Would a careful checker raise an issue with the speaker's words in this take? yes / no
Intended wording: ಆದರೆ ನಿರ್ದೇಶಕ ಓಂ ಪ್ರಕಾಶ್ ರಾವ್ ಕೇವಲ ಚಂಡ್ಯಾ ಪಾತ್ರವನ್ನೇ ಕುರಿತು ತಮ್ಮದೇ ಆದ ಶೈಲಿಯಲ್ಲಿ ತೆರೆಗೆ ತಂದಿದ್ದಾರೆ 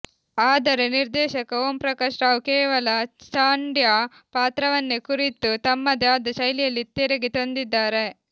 no